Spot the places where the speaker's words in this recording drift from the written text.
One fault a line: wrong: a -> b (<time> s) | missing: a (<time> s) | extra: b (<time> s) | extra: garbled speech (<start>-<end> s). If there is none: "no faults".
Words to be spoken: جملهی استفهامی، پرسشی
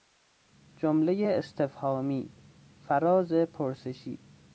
extra: فراز (2.8 s)